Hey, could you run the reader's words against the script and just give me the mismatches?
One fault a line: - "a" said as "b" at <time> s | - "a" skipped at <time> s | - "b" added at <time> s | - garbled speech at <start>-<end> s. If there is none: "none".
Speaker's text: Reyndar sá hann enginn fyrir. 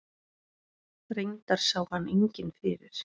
none